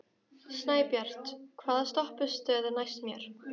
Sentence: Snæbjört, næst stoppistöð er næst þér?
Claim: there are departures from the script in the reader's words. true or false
true